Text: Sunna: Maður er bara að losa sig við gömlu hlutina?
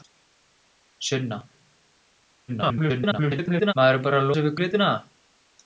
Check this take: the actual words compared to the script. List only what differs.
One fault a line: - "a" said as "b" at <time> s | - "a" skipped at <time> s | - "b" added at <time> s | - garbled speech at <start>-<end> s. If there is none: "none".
- garbled speech at 2.5-3.7 s
- "losa" skipped at 4.3 s
- "gömlu" skipped at 4.6 s